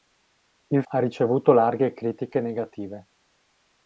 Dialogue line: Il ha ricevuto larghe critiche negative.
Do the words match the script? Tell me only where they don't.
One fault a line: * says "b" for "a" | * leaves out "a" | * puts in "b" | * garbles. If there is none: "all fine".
all fine